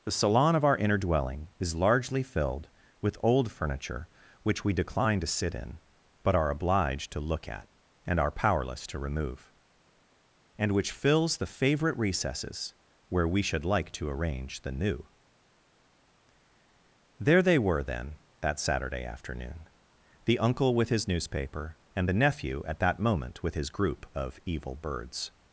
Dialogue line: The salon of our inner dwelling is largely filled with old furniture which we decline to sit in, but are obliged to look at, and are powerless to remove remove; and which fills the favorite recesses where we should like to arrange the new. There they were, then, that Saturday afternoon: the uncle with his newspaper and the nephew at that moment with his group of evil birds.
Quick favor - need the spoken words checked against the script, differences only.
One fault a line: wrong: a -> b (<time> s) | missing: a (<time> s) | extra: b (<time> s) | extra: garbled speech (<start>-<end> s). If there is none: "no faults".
missing: remove (9.5 s)